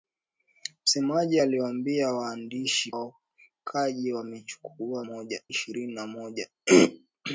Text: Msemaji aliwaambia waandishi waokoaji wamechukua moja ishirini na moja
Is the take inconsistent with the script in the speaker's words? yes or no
no